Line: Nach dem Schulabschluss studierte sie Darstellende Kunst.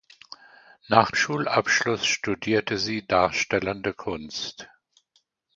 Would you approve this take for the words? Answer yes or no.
no